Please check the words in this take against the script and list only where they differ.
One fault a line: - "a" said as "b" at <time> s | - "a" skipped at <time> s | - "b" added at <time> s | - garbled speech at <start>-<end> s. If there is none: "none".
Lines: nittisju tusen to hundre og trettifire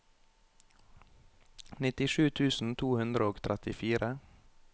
none